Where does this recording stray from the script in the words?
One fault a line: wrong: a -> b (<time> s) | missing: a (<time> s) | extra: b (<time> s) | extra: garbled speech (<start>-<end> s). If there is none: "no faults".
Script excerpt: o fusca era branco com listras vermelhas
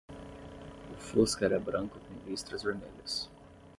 no faults